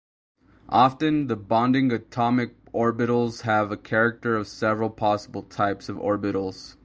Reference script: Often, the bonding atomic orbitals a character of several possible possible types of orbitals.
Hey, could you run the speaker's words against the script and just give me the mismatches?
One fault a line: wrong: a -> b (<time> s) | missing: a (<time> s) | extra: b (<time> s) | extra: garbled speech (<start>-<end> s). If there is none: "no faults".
extra: have (3.4 s)
missing: possible (5.4 s)